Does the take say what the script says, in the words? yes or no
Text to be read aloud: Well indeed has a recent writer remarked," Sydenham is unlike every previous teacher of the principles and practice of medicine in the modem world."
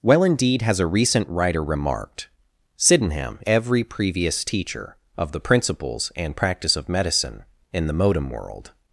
no